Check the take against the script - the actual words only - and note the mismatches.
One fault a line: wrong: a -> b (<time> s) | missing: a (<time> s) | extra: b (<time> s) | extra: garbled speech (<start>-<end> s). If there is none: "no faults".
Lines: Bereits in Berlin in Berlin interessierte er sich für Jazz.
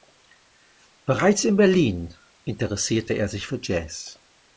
missing: in Berlin (2.1 s)